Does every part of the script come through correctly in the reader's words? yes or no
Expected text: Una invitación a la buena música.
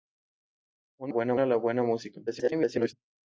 no